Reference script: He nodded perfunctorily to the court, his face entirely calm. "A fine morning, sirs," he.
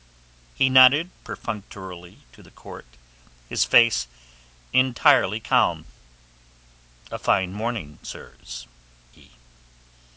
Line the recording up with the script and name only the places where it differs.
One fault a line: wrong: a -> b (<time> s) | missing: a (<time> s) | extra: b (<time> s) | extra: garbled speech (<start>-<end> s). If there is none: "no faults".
no faults